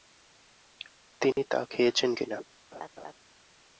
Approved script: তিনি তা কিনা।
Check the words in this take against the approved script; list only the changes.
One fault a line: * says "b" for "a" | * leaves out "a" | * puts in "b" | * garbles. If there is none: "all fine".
* puts in "খেয়েছেন"